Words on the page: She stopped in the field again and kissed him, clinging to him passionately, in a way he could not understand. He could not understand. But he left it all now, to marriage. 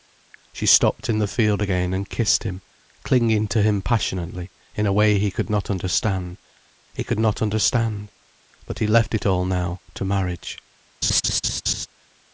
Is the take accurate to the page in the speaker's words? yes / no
yes